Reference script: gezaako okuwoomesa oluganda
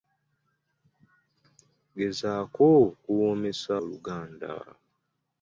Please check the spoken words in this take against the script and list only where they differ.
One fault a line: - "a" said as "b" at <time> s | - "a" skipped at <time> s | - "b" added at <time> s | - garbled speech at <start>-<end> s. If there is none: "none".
none